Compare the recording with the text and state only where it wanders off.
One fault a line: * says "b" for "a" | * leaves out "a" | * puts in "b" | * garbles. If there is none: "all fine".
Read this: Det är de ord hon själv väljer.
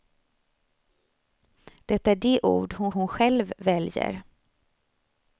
* puts in "hon"